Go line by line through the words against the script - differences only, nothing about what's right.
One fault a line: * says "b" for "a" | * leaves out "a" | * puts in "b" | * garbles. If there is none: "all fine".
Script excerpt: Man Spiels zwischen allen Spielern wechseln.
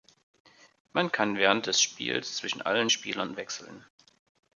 * puts in "kann während des"